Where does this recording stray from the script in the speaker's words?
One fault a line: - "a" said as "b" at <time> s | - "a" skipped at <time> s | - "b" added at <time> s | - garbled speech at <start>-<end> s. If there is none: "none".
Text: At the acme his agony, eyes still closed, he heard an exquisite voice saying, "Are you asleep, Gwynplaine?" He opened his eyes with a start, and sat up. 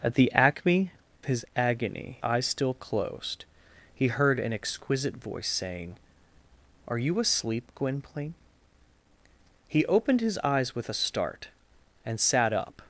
none